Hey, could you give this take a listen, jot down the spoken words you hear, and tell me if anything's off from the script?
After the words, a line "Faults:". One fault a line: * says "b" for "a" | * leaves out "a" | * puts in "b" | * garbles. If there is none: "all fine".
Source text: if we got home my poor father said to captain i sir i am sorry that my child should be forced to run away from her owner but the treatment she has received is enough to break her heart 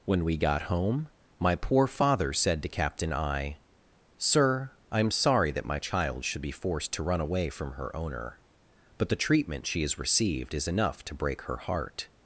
when we got home my poor father said to captain i sir i am sorry that my child should be forced to run away from her owner but the treatment she has received is enough to break her heart
Faults:
* says "when" for "if"